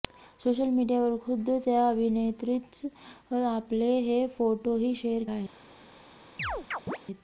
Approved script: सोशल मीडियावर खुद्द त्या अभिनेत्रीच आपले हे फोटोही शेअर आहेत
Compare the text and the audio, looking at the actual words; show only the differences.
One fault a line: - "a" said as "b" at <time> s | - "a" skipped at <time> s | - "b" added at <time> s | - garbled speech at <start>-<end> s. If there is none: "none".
none